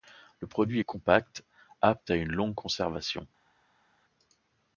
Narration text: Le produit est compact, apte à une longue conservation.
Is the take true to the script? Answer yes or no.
yes